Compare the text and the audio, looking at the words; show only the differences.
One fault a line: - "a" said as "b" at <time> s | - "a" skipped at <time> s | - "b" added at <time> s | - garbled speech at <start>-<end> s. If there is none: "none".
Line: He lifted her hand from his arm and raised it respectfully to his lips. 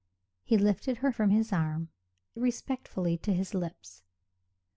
- "hand" skipped at 1.1 s
- "and raised it" skipped at 1.9 s